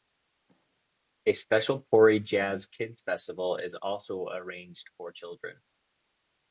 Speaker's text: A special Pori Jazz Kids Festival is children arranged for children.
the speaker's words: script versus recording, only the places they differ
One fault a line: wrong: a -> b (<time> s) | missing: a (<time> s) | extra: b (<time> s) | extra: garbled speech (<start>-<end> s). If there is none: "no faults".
wrong: children -> also (3.8 s)